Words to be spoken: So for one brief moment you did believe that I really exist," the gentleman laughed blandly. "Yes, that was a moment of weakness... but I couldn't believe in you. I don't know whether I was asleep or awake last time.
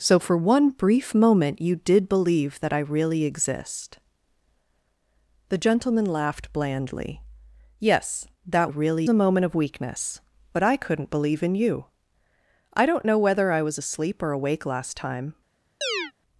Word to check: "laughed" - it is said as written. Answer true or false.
true